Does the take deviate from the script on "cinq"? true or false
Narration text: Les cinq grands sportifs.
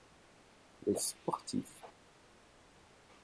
true